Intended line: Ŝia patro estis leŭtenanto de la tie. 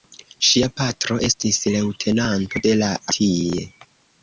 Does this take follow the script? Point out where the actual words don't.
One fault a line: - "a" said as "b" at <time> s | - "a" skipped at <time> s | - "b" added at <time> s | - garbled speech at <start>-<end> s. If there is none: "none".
none